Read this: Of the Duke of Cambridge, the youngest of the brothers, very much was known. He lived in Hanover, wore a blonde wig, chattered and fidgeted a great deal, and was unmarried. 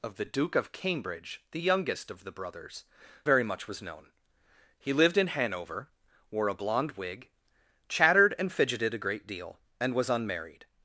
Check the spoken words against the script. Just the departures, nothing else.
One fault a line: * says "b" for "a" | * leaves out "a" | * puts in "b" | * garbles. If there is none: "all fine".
all fine